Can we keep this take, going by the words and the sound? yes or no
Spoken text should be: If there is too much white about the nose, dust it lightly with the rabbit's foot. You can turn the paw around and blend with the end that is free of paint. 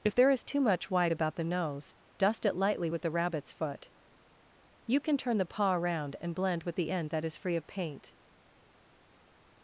yes